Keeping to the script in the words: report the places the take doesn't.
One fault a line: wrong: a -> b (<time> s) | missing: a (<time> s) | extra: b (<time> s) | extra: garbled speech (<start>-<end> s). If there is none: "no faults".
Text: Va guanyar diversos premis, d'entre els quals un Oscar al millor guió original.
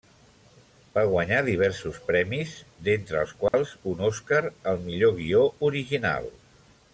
no faults